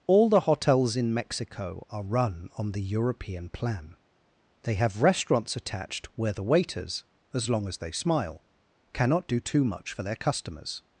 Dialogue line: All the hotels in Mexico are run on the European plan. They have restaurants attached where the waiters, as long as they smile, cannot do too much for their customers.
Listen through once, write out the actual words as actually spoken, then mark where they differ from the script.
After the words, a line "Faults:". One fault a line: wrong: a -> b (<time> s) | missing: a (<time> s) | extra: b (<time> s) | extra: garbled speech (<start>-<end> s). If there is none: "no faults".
All the hotels in Mexico are run on the European plan. They have restaurants attached where the waiters, as long as they smile, cannot do too much for their customers.
Faults:
no faults